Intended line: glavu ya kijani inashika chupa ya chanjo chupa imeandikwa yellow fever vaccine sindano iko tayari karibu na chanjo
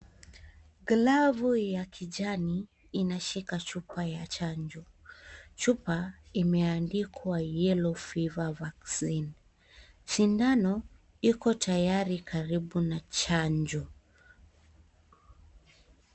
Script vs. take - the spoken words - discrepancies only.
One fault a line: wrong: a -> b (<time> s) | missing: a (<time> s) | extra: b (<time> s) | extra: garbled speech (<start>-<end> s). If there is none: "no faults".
no faults